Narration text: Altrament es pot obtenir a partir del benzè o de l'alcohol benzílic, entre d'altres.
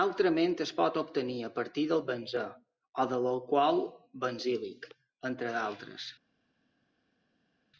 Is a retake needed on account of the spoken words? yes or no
no